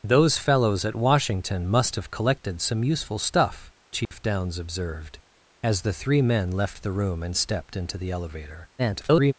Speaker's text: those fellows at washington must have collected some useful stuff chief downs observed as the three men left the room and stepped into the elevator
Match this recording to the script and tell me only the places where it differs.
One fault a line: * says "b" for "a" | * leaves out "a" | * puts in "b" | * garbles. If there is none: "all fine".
* garbles